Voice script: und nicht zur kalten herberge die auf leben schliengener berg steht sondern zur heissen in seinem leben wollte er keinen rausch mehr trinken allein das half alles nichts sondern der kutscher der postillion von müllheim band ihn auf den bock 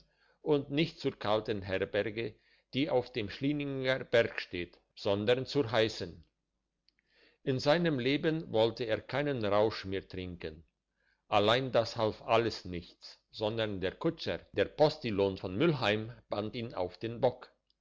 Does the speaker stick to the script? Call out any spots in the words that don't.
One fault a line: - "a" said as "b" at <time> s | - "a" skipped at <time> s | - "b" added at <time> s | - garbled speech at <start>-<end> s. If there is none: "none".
- "leben" said as "dem" at 3.1 s